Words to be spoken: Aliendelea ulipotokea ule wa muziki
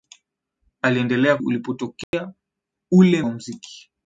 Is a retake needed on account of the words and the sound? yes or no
yes